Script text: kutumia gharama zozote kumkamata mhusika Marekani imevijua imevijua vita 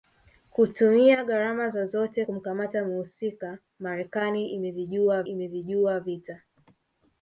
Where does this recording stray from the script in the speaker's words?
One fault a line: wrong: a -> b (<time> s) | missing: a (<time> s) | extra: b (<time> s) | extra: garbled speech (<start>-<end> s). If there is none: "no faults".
no faults